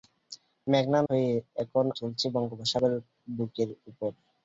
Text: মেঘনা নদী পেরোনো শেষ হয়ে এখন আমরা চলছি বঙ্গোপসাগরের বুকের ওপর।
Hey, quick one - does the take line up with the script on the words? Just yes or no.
no